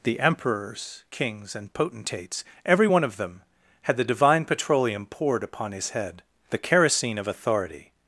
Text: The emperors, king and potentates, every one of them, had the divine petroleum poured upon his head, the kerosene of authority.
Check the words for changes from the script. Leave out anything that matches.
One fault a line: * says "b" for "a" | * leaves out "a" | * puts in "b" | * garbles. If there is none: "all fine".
* says "kings" for "king"